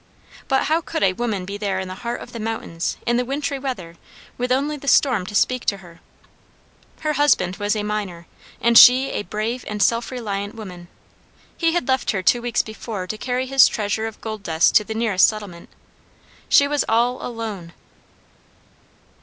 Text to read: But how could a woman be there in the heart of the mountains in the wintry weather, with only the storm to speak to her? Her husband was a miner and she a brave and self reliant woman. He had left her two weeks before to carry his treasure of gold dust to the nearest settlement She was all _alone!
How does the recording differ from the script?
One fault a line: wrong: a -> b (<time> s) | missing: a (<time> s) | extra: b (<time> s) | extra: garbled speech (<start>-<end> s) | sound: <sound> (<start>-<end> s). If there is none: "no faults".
no faults